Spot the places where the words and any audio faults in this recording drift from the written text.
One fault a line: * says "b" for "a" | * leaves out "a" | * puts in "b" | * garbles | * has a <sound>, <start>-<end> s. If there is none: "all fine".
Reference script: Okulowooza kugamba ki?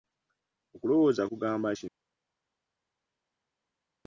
all fine